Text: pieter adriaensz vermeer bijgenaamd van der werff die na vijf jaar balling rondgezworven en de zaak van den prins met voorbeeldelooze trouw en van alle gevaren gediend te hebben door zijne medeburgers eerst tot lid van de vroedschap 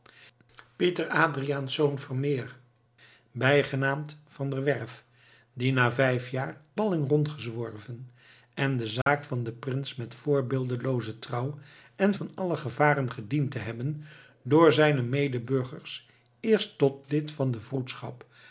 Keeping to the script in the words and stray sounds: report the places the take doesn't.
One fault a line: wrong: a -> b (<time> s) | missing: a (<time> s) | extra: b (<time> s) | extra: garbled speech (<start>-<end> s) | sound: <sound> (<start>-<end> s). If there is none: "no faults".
sound: dropout (9.0-9.1 s)